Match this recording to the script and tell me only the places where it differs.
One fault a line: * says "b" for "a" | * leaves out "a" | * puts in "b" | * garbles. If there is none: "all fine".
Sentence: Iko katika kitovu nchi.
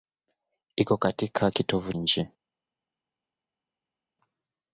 all fine